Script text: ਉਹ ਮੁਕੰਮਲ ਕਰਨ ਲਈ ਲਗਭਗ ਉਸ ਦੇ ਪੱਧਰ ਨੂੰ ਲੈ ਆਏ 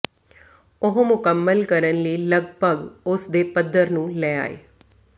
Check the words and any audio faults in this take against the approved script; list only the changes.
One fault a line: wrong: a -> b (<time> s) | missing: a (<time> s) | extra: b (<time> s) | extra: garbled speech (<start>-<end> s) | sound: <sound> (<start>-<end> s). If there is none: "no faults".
no faults